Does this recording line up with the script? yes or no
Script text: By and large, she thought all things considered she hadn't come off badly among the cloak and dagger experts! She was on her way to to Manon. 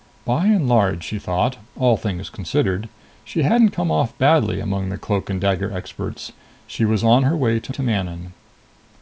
yes